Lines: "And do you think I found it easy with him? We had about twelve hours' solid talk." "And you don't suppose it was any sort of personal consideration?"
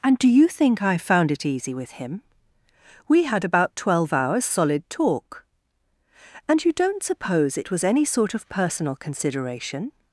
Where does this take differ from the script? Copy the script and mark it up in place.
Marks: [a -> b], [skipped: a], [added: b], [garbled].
"And do you think I found it easy with him? We had about twelve hours' solid talk." "And you don't suppose it was any sort of personal consideration?"